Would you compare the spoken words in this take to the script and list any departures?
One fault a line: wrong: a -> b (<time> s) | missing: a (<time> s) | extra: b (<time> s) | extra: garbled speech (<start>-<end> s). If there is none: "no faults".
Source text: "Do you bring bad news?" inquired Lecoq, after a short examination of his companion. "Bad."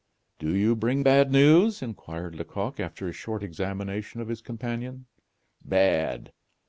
no faults